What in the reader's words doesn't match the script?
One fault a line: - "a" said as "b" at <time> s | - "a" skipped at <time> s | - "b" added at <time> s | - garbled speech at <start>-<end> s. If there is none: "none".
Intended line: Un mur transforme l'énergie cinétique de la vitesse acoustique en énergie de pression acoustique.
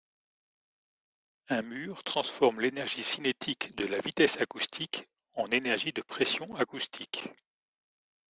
none